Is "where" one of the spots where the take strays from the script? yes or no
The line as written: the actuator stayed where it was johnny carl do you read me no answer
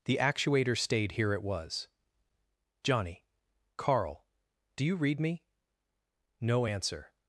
yes